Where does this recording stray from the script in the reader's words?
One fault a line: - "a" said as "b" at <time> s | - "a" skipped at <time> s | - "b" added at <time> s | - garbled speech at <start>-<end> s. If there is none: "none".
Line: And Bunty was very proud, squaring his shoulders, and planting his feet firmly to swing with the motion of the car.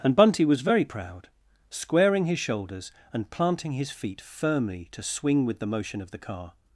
none